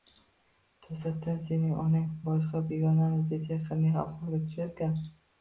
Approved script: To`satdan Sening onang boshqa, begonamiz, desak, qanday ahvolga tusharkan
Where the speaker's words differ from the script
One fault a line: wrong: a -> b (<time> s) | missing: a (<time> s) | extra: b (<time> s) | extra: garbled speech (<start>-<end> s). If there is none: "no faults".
no faults